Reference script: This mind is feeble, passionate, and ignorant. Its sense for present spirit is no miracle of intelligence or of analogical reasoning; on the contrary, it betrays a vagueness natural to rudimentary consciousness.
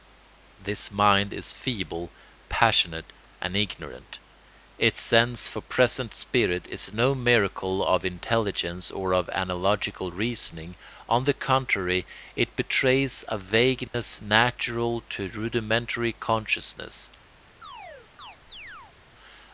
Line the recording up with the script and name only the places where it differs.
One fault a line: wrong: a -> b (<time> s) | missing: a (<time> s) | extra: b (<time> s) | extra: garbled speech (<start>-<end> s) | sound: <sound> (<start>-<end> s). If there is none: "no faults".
sound: dropout (13.9-13.9 s)
sound: chirp (17.6-19.0 s)